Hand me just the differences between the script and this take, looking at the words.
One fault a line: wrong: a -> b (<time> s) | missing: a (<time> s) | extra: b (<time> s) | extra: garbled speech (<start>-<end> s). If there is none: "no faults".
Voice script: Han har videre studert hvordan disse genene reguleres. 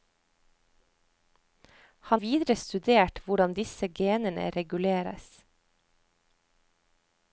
missing: har (2.2 s)